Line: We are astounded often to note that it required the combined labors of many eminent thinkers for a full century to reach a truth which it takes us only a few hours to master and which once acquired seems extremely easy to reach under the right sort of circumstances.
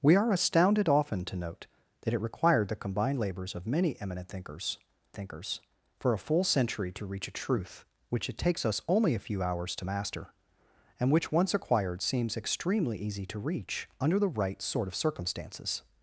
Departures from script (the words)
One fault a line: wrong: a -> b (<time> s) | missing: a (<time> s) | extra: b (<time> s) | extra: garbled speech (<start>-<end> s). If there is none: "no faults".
extra: thinkers (5.1 s)